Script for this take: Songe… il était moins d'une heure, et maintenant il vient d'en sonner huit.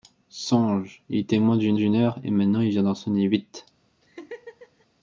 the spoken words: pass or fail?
fail